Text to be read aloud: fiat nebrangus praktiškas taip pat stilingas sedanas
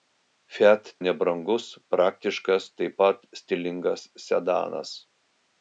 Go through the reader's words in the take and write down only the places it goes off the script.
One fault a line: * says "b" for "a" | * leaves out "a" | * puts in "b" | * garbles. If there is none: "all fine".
all fine